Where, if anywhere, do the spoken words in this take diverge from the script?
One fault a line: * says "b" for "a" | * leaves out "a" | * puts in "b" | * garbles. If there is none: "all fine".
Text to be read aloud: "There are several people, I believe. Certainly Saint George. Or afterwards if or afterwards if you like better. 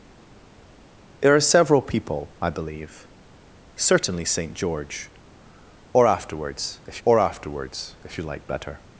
all fine